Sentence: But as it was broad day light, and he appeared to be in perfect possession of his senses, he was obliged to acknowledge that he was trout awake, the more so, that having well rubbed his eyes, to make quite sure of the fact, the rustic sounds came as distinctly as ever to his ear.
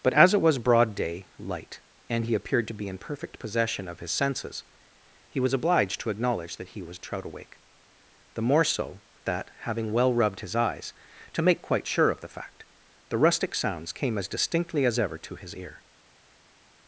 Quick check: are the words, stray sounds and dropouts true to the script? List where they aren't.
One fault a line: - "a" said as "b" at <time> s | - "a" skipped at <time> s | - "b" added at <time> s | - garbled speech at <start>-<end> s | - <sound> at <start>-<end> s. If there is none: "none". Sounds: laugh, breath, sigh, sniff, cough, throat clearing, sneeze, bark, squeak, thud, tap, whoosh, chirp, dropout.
none